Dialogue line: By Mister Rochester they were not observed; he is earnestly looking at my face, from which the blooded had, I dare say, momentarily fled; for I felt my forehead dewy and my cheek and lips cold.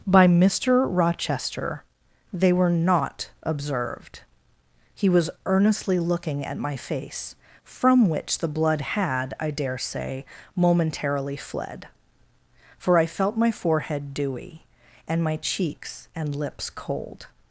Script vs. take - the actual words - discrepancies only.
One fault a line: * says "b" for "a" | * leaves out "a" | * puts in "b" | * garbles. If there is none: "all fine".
* says "was" for "is"
* says "blood" for "blooded"
* says "cheeks" for "cheek"